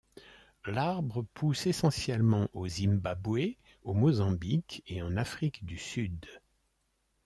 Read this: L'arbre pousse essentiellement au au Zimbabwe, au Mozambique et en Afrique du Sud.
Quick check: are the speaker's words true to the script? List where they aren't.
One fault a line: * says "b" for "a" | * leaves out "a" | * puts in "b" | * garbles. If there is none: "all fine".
* leaves out "au"